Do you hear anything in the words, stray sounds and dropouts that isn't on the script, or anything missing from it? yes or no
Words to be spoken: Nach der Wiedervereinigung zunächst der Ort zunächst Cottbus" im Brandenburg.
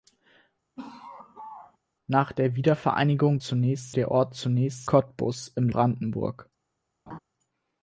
yes